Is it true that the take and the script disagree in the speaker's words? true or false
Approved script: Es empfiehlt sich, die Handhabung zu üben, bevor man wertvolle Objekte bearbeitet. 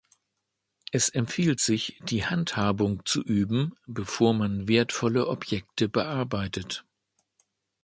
false